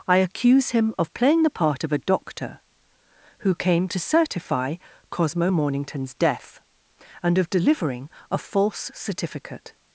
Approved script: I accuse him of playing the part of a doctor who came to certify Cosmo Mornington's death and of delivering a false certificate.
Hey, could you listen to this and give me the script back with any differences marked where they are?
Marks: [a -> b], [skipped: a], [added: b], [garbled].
I accuse him of playing the part of a doctor who came to certify Cosmo Mornington's death and of delivering a false certificate.